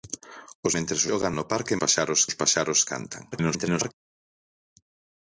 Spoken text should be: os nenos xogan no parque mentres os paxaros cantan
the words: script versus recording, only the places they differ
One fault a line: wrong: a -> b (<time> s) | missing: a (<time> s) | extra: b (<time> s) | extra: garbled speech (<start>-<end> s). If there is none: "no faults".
wrong: nenos -> mentres (0.7 s)
wrong: mentres -> paxaros (1.8 s)
extra: garbled speech (3.3-3.9 s)